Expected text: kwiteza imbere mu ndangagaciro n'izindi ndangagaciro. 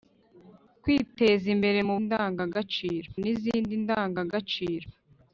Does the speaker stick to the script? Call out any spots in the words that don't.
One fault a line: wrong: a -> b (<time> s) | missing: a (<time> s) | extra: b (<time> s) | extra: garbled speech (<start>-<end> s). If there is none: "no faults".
no faults